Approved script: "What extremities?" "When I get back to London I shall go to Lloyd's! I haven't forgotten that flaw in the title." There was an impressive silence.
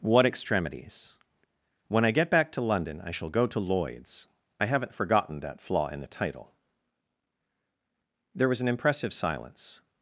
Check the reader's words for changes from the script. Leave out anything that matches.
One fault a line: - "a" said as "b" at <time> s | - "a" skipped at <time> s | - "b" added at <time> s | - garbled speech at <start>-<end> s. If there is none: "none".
none